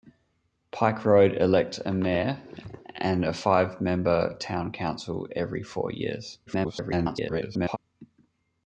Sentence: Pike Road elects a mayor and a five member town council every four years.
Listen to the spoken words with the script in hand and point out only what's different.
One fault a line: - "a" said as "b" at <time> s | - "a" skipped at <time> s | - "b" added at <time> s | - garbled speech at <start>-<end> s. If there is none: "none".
- garbled speech at 6.5-7.8 s